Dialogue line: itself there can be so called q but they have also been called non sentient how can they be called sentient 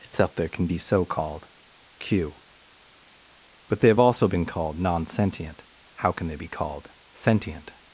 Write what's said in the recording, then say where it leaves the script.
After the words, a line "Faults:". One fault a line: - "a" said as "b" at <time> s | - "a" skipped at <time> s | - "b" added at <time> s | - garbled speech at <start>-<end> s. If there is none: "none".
itself there can be so called q but they have also been called non sentient how can they be called sentient
Faults:
none